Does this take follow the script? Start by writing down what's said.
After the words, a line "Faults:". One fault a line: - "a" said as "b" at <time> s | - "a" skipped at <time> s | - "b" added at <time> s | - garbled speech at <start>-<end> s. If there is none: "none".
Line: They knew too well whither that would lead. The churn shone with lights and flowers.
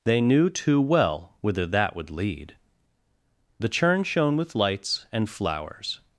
They knew too well whither that would lead. The churn shone with lights and flowers.
Faults:
none